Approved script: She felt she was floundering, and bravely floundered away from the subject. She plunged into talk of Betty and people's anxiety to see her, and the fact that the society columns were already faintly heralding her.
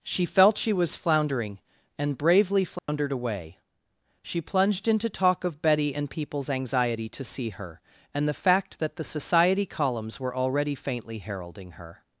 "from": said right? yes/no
no